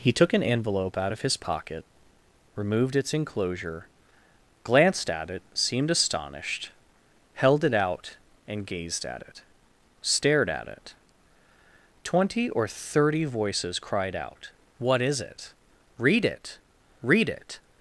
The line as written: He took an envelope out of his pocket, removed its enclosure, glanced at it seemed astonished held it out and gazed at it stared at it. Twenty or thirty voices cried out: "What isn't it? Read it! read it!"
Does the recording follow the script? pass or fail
fail